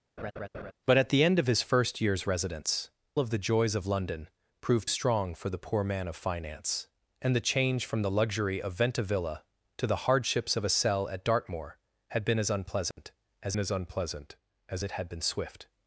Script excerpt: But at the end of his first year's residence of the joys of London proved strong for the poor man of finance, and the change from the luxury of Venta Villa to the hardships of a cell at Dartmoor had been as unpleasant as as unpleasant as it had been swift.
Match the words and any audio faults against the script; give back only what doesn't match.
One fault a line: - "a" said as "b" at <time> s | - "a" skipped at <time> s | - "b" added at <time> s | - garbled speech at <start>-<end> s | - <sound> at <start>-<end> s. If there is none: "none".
- laugh at 0.2-0.7 s
- dropout at 12.9-13.0 s